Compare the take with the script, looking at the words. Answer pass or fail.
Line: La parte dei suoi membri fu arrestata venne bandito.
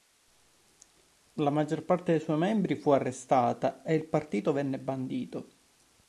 fail